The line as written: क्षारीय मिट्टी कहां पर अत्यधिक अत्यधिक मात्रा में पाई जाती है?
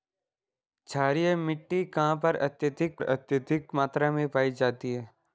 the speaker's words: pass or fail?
pass